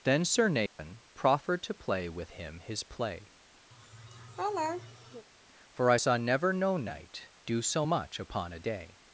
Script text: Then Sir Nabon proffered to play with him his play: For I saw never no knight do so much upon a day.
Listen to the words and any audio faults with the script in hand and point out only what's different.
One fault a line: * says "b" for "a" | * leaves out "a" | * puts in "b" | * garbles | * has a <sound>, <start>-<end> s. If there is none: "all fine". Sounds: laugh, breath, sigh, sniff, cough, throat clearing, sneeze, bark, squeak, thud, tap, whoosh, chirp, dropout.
* has a dropout, 0.7-0.8 s
* has a laugh, 3.7-5.3 s